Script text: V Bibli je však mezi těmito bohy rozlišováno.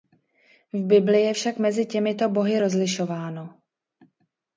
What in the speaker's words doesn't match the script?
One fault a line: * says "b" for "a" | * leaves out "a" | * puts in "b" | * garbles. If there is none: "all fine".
all fine